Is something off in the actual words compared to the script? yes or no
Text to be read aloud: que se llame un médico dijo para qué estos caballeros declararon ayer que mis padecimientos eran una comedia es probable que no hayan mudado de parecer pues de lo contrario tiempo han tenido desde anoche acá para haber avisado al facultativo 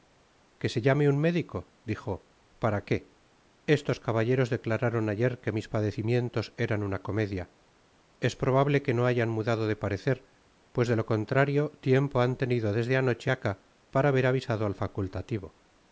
no